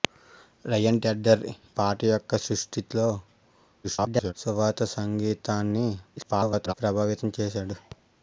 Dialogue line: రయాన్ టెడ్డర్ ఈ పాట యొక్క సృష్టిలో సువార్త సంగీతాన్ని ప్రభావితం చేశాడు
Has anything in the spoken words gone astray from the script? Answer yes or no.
yes